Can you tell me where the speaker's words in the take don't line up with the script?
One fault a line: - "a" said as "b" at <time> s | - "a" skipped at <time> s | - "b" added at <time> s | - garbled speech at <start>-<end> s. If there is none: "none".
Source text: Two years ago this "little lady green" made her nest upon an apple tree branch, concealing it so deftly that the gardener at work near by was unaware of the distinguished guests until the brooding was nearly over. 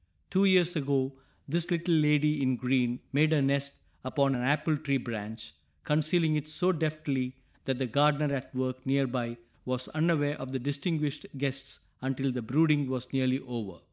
- "in" added at 2.4 s